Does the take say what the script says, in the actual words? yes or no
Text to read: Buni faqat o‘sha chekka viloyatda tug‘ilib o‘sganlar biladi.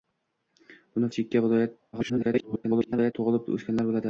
no